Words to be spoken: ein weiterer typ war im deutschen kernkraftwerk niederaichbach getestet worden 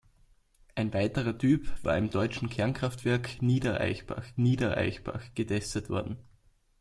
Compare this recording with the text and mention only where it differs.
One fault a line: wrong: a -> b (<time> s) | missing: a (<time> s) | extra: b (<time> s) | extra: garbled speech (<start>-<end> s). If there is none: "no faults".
extra: niederaichbach (4.4 s)